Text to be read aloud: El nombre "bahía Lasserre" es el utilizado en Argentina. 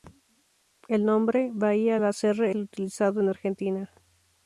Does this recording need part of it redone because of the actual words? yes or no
yes